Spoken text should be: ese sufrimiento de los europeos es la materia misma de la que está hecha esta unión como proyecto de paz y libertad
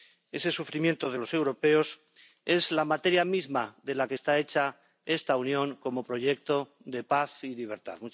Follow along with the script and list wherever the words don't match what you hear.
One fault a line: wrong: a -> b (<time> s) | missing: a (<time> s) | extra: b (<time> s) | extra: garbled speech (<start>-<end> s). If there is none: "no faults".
no faults